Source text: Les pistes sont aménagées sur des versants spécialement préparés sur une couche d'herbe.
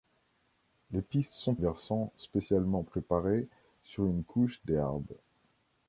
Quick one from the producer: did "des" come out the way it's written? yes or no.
no